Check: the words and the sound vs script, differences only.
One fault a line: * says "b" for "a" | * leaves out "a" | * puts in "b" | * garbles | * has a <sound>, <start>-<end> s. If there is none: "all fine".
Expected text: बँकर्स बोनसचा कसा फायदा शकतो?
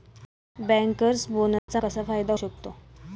* has a dropout, 1.6-1.7 s